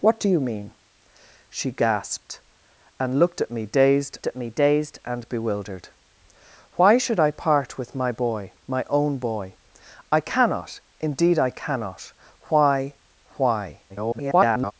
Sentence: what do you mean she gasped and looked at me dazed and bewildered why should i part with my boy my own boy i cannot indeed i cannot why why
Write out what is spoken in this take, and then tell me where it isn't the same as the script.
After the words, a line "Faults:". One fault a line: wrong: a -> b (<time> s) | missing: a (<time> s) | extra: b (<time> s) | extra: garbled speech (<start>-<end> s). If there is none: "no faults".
what do you mean she gasped and looked at me dazed at me dazed and bewildered why should i part with my boy my own boy i cannot indeed i cannot why why [garbled]
Faults:
extra: at me dazed (4.2 s)
extra: garbled speech (13.9-14.7 s)